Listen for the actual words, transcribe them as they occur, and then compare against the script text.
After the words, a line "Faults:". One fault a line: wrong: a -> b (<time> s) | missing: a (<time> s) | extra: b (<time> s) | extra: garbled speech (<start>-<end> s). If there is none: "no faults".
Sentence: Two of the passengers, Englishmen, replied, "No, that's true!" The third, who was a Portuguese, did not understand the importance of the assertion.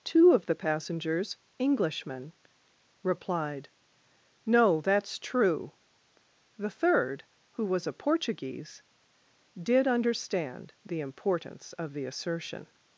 Two of the passengers, Englishmen, replied, "No, that's true!" The third, who was a Portuguese, did understand the importance of the assertion.
Faults:
missing: not (9.9 s)